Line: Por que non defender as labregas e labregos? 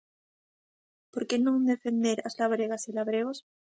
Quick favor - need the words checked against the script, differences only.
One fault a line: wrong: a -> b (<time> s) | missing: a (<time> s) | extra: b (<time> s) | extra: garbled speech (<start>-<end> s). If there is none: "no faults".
no faults